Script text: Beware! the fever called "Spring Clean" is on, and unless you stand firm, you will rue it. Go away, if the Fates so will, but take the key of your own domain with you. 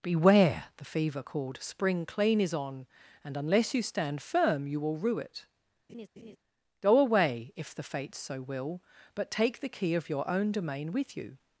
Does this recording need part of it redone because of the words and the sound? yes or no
yes